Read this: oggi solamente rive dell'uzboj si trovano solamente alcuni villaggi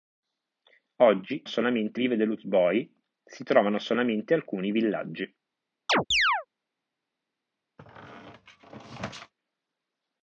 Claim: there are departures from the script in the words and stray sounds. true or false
true